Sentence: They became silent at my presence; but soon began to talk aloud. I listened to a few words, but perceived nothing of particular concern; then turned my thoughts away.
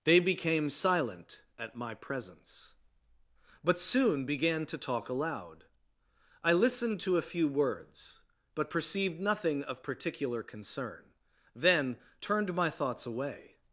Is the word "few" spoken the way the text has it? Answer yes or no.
yes